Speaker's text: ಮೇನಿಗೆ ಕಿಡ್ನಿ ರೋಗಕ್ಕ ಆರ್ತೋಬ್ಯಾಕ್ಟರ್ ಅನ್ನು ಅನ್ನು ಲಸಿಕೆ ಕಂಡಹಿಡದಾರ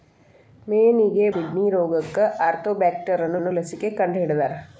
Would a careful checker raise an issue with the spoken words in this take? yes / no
no